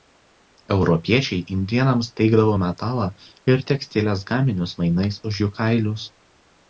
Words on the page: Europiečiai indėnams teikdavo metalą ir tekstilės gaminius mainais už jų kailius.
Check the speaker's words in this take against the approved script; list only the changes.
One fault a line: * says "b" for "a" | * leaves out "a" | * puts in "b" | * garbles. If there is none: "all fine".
all fine